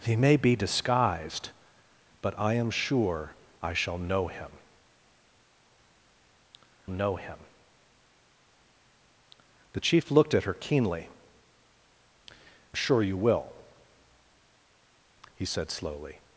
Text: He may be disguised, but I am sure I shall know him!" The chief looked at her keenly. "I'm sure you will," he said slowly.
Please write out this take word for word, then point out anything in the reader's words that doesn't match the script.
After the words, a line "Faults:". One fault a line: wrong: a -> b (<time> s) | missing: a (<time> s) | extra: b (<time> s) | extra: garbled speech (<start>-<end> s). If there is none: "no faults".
He may be disguised, but I am sure I shall know him know him!" The chief looked at her keenly. "Sure you will," he said slowly.
Faults:
extra: know him (6.9 s)
missing: I'm (11.1 s)